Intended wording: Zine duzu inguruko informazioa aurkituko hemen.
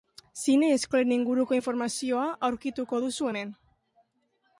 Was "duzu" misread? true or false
true